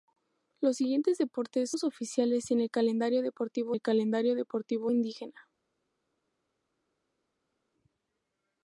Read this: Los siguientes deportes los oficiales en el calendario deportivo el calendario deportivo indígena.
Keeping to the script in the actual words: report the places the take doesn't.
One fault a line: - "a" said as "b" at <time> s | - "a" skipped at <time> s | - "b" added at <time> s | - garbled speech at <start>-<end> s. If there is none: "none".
none